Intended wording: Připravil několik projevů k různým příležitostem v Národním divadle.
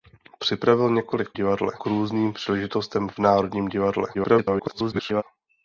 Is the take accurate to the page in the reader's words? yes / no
no